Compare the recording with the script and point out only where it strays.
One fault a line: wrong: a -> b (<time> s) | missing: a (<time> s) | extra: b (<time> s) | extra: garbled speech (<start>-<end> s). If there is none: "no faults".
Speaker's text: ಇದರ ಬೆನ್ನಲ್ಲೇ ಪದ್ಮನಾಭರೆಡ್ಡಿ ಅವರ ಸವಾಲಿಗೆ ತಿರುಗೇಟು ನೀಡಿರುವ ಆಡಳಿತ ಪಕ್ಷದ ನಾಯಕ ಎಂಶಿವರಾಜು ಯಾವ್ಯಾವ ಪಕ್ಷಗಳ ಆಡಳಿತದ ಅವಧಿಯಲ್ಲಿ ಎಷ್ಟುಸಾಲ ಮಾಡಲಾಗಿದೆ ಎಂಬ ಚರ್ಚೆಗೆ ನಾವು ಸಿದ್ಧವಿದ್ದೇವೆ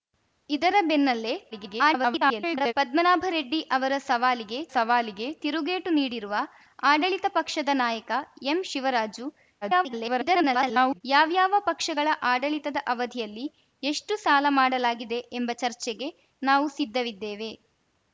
extra: garbled speech (1.5-2.7 s)
extra: ಸವಾಲಿಗೆ (4.7 s)
extra: garbled speech (9.6-11.0 s)